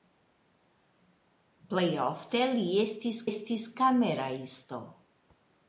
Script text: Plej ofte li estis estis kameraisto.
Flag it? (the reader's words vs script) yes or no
no